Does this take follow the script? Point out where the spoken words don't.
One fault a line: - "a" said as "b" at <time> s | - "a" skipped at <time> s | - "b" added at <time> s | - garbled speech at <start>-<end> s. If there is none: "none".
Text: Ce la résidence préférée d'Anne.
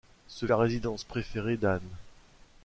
none